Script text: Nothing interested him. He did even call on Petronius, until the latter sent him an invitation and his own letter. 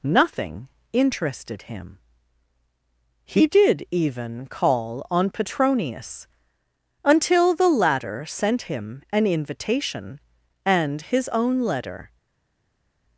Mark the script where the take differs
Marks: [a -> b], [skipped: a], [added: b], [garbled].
Nothing interested him. He did even call on Petronius, until the latter sent him an invitation and his own letter.